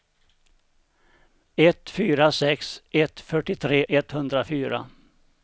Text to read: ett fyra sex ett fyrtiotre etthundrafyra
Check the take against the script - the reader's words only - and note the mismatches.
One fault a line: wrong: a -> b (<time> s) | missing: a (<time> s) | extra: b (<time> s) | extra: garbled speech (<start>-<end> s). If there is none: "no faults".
no faults